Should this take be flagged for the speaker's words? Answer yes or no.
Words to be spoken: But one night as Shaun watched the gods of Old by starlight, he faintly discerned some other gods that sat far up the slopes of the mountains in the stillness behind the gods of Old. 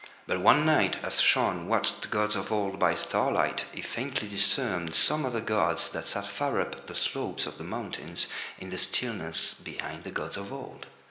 no